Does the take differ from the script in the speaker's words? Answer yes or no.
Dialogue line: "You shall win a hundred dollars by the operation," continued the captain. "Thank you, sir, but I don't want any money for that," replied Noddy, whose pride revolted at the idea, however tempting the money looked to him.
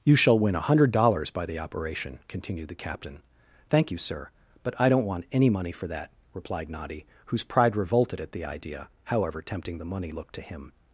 no